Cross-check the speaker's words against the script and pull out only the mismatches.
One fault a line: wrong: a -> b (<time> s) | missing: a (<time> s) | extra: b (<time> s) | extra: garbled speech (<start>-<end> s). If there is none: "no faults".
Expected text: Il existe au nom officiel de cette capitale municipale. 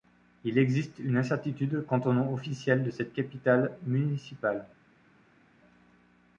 extra: une incertitude quant (1.0 s)